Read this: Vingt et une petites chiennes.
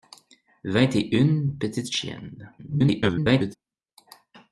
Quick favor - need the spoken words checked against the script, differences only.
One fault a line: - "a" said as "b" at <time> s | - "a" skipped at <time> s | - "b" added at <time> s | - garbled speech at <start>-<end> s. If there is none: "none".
- garbled speech at 2.6-3.6 s